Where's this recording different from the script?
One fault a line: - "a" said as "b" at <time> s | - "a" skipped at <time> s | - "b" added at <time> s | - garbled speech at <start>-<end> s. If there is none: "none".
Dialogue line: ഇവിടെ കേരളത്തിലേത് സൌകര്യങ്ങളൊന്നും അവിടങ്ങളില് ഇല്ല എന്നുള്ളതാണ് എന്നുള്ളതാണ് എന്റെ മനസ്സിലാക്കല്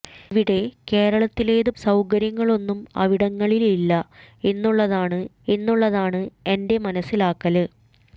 none